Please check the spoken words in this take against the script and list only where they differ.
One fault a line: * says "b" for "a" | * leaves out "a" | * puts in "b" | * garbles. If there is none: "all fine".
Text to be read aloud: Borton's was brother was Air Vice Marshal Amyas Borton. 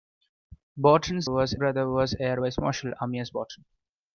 all fine